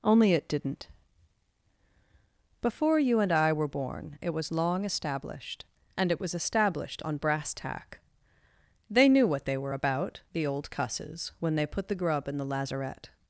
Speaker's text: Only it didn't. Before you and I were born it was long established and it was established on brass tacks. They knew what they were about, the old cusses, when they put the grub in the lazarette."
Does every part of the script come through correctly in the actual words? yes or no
no